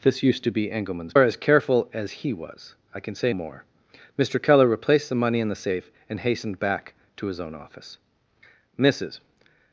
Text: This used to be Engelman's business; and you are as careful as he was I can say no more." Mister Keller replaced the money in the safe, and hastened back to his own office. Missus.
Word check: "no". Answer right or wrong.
wrong